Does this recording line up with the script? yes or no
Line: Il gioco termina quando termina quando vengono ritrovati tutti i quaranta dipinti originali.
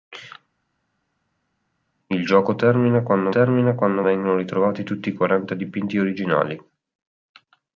yes